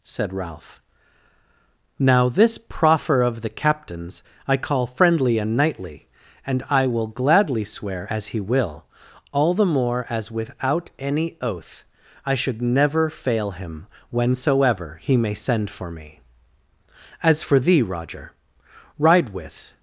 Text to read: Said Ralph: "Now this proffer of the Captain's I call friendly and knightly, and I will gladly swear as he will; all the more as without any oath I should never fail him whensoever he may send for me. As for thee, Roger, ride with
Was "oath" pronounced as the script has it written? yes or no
yes